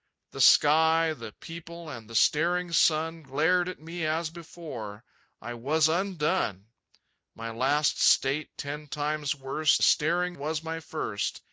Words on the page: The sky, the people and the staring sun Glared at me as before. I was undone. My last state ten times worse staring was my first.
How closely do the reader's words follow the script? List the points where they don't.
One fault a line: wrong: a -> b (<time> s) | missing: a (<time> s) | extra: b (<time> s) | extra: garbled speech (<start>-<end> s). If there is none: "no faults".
no faults